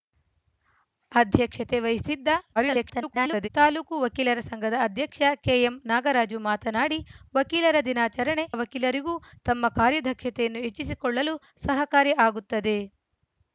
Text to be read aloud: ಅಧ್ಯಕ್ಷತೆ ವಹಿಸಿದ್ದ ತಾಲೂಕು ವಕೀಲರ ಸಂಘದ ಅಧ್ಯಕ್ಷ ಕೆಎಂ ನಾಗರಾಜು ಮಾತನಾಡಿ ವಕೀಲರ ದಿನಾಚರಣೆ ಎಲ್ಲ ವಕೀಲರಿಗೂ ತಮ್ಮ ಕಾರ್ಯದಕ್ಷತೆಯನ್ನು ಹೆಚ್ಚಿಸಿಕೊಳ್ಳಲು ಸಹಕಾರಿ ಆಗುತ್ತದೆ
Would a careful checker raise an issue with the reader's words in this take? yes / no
yes